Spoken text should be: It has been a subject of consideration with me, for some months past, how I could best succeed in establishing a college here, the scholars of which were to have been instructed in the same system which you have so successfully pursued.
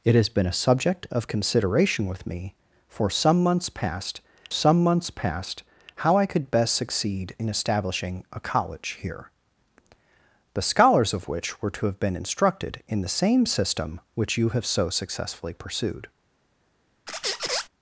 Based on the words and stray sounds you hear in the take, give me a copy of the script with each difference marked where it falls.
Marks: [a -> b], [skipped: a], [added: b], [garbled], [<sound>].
It has been a subject of consideration with me, for some months past, [added: some months past] how I could best succeed in establishing a college here, the scholars of which were to have been instructed in the same system which you have so successfully pursued. [squeak]